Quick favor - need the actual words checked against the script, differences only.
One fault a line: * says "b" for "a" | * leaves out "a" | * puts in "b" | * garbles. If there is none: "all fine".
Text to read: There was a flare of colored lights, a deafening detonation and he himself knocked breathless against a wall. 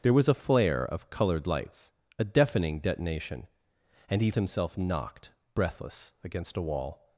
all fine